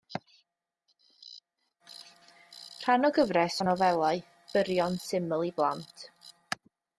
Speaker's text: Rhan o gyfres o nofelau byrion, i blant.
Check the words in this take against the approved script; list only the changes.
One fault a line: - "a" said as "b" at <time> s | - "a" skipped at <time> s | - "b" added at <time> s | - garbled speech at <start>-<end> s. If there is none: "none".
- "syml" added at 5.1 s